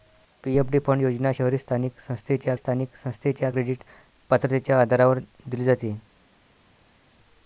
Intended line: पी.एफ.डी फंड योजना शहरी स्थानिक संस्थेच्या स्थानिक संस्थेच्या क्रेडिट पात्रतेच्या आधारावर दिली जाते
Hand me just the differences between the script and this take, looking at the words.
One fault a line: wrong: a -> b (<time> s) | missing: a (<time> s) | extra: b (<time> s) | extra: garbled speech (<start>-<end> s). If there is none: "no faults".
no faults